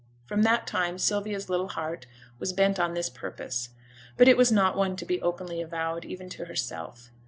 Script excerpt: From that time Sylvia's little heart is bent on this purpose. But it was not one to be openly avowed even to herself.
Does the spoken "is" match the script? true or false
false